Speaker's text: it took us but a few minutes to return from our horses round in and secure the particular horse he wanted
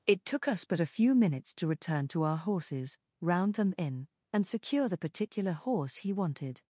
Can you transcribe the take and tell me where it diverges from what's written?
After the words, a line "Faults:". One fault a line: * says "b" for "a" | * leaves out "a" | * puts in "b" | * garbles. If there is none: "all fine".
it took us but a few minutes to return to our horses round them in and secure the particular horse he wanted
Faults:
* says "to" for "from"
* puts in "them"